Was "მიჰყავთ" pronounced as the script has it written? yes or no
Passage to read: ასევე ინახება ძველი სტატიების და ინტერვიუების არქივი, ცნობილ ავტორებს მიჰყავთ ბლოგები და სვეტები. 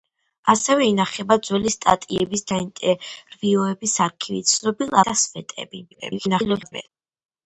no